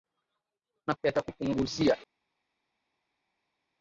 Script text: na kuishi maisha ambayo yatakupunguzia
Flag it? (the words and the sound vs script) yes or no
yes